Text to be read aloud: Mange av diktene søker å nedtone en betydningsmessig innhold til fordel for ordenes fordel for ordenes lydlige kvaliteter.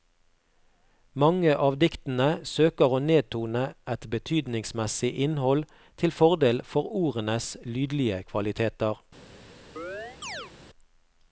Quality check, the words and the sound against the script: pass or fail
fail